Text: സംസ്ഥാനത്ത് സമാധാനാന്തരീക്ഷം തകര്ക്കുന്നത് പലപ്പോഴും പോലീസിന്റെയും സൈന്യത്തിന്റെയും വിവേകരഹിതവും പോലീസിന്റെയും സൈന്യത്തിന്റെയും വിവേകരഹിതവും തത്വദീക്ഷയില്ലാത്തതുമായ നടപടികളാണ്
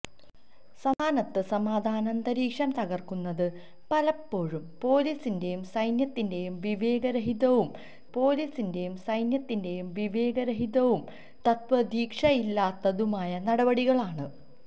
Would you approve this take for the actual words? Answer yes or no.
yes